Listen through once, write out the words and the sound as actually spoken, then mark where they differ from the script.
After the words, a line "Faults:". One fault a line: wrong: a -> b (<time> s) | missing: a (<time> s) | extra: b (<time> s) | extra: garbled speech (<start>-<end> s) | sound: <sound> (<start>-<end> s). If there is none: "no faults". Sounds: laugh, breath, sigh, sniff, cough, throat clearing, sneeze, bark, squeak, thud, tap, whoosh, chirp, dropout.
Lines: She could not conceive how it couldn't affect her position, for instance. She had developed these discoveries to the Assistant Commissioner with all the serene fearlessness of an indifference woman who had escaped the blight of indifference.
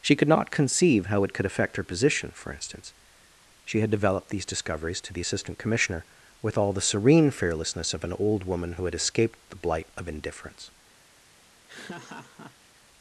She could not conceive how it could affect her position, for instance. She had developed these discoveries to the Assistant Commissioner with all the serene fearlessness of an old woman who had escaped the blight of indifference.
Faults:
wrong: couldn't -> could (1.3 s)
wrong: indifference -> old (8.1 s)
sound: laugh (11.7-12.8 s)